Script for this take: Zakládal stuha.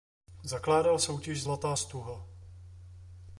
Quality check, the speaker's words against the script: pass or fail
fail